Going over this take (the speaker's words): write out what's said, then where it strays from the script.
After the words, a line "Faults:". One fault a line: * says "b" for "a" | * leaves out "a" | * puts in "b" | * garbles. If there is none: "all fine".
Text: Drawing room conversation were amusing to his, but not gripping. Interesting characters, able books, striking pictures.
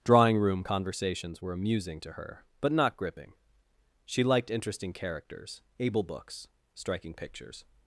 Drawing room conversations were amusing to her, but not gripping. She liked interesting characters, able books, striking pictures.
Faults:
* says "conversations" for "conversation"
* says "her" for "his"
* puts in "She liked"